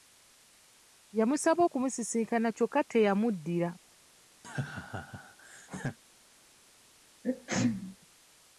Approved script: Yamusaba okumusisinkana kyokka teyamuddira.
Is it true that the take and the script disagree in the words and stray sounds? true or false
true